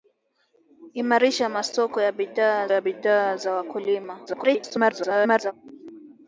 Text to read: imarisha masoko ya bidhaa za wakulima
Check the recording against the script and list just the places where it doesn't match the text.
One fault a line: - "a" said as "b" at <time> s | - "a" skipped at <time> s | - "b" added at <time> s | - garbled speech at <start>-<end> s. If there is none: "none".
- "ya bidhaa" added at 2.7 s
- garbled speech at 4.3-5.5 s